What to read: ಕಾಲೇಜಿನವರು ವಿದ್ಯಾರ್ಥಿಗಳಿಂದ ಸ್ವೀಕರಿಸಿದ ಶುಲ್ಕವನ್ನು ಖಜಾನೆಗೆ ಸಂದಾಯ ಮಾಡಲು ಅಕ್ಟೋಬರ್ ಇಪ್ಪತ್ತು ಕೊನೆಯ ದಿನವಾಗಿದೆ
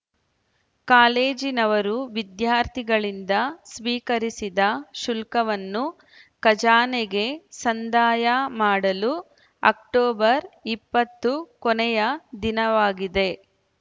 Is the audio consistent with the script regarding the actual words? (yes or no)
yes